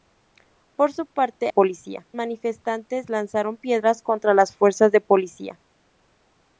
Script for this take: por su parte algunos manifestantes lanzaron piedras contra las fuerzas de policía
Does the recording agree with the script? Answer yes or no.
no